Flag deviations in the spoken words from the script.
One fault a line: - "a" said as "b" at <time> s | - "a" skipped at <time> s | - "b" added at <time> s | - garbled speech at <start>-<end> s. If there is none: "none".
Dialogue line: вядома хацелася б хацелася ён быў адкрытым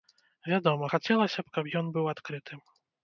- "хацелася" said as "каб" at 1.6 s